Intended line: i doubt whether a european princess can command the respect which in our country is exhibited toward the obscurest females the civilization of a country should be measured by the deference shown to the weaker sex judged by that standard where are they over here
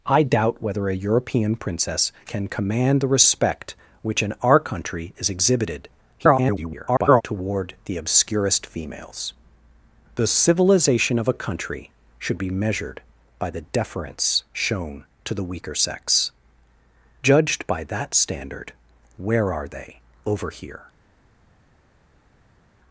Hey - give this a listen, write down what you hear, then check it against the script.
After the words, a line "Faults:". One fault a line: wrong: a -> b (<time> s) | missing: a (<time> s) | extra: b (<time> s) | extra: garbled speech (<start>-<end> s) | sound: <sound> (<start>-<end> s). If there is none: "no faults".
i doubt whether a european princess can command the respect which in our country is exhibited [garbled] toward the obscurest females the civilization of a country should be measured by the deference shown to the weaker sex judged by that standard where are they over here
Faults:
extra: garbled speech (6.2-7.2 s)